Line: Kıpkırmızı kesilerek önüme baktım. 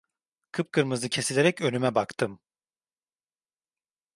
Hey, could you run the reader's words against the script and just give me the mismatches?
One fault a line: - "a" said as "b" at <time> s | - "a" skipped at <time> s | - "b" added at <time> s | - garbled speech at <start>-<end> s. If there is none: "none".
none